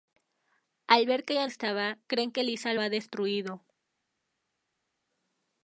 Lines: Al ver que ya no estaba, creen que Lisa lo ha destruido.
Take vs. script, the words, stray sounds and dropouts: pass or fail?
fail